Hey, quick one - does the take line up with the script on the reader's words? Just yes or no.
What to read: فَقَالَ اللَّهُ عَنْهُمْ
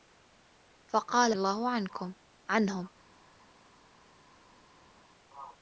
yes